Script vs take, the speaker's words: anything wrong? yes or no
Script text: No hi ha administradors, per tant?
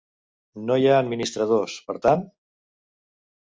no